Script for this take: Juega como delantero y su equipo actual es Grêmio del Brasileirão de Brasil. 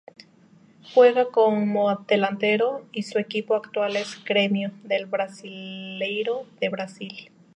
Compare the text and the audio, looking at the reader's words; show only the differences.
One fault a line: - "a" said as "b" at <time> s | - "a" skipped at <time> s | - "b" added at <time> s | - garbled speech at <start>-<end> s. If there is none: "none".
none